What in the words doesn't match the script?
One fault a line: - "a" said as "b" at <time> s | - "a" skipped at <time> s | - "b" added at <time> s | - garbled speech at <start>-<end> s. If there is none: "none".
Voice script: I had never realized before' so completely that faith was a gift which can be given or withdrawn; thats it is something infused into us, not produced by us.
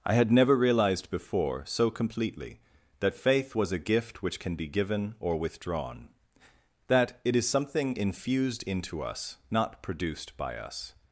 - "thats" said as "that" at 6.9 s